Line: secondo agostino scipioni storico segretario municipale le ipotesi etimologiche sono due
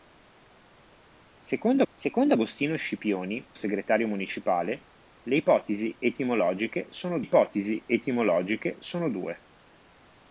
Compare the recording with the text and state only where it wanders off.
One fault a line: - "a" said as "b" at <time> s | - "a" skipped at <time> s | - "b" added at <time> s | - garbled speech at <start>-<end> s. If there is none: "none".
- "secondo" added at 1.9 s
- "storico" skipped at 3.5 s
- "ipotesi etimologiche sono" added at 7.2 s